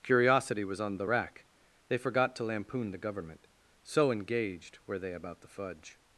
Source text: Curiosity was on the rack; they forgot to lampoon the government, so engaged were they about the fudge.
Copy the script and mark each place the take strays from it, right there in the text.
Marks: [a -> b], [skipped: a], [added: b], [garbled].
Curiosity was on the rack; they forgot to lampoon the government, so engaged were they about the fudge.